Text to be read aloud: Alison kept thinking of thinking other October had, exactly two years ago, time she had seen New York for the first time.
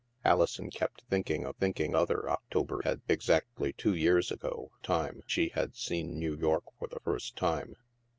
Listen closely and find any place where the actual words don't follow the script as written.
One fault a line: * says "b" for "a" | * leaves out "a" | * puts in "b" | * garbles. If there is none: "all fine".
all fine